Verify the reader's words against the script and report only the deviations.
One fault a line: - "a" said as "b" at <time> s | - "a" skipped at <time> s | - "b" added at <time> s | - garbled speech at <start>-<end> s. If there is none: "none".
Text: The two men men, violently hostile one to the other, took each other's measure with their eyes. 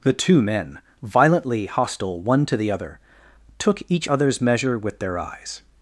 - "men" skipped at 0.8 s